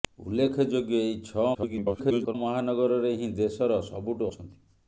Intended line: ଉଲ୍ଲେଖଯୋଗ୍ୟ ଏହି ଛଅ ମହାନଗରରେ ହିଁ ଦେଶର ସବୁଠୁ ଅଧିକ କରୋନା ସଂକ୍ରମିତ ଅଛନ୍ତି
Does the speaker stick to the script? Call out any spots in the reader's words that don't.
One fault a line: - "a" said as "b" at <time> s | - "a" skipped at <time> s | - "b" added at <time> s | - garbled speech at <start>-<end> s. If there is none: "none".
- garbled speech at 1.5-2.3 s
- "ଅଧିକ କରୋନା ସଂକ୍ରମିତ" skipped at 4.3 s